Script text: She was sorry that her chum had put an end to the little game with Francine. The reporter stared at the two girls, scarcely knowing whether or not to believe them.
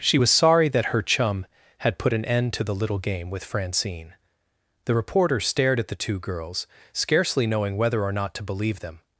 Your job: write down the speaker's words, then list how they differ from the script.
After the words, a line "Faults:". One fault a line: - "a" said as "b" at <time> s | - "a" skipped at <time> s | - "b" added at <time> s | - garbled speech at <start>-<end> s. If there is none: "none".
She was sorry that her chum had put an end to the little game with Francine. The reporter stared at the two girls, scarcely knowing whether or not to believe them.
Faults:
none